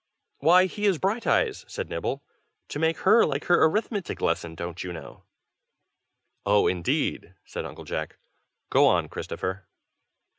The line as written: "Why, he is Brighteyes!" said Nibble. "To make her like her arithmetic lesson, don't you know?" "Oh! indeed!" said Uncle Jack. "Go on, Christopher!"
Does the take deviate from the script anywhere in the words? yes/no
no